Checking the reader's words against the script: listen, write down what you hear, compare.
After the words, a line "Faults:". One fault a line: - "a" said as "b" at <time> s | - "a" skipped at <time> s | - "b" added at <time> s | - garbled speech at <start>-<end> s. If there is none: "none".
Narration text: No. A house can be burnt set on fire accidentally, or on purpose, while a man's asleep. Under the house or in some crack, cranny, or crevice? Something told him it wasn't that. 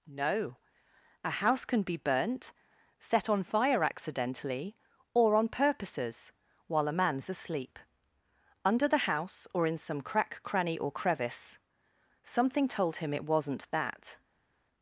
No. A house can be burnt set on fire accidentally, or on purposes, while a man's asleep. Under the house or in some crack, cranny, or crevice? Something told him it wasn't that.
Faults:
- "purpose" said as "purposes" at 5.5 s